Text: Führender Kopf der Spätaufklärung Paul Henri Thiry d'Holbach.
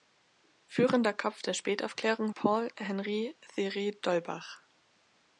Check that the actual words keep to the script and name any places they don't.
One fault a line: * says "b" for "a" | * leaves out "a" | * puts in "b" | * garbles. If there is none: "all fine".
all fine